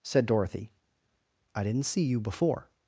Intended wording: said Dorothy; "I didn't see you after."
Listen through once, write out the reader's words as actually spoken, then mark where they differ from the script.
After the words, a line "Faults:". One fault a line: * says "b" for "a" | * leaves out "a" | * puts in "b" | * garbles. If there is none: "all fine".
said Dorothy; "I didn't see you before."
Faults:
* says "before" for "after"